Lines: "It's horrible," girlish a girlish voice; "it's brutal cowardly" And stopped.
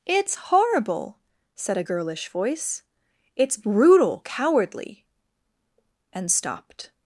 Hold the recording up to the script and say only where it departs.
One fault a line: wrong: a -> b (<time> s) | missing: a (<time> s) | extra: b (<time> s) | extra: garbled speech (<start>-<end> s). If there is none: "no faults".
wrong: girlish -> said (1.6 s)